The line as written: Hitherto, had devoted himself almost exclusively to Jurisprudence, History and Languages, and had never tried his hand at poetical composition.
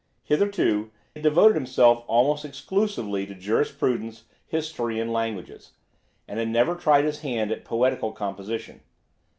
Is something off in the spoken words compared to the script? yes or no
no